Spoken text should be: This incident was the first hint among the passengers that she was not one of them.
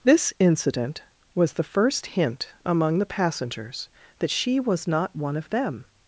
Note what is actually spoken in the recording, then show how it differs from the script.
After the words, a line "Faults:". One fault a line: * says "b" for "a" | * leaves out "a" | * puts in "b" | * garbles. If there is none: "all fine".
This incident was the first hint among the passengers that she was not one of them.
Faults:
all fine